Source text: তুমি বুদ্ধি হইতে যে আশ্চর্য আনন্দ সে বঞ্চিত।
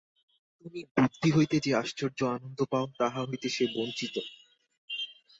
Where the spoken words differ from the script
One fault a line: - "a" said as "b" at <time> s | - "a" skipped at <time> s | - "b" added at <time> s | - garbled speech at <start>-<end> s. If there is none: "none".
- "পাও তাহা হইতে" added at 2.7 s